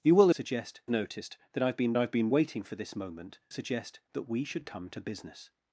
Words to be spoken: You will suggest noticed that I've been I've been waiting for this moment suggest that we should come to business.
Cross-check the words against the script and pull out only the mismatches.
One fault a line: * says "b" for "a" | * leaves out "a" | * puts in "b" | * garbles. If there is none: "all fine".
all fine